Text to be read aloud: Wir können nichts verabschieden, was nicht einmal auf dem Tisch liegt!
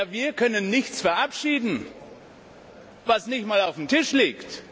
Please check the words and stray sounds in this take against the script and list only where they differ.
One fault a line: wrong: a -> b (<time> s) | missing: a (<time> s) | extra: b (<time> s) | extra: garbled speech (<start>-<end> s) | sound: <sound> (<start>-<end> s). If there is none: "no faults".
no faults